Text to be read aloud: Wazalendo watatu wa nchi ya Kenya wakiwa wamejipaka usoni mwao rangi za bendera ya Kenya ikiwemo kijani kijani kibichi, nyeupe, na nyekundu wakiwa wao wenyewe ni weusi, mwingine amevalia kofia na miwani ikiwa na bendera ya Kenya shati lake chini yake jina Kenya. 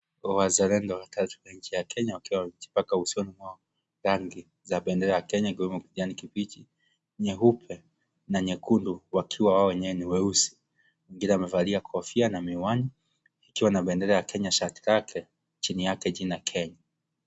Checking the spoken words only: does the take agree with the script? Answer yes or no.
no